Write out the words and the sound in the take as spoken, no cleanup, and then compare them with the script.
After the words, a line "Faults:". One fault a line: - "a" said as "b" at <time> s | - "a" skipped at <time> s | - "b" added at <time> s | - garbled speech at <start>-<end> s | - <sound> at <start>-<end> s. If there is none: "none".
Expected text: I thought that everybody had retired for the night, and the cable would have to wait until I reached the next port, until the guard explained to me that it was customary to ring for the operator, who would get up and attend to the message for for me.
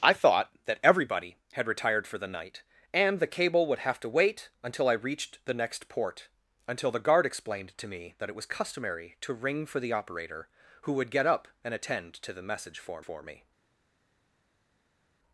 I thought that everybody had retired for the night, and the cable would have to wait until I reached the next port, until the guard explained to me that it was customary to ring for the operator, who would get up and attend to the message for for me.
Faults:
none